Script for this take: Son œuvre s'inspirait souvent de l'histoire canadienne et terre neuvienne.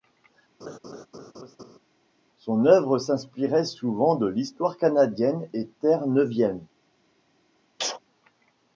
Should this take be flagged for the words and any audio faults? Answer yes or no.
yes